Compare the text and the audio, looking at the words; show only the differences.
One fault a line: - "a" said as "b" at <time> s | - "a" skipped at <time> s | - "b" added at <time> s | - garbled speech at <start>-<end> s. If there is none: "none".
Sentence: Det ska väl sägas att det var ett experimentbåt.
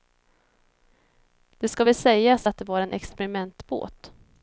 - "ett" said as "en" at 2.8 s